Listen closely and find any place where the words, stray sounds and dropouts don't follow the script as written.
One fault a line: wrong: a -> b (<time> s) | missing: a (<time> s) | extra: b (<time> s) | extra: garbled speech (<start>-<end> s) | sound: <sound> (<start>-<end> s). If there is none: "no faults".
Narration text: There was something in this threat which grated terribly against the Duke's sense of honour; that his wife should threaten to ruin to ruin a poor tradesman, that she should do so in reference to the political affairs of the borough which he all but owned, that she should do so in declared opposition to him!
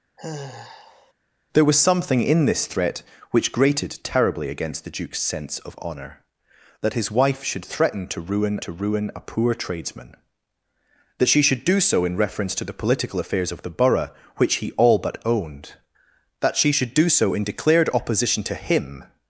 sound: sigh (0.2-1.1 s)